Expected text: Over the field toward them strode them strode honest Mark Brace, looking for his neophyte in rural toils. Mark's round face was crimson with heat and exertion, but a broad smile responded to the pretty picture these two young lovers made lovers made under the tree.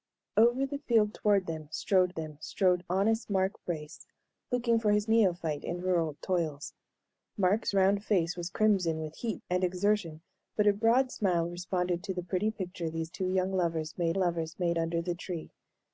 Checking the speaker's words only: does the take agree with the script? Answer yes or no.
yes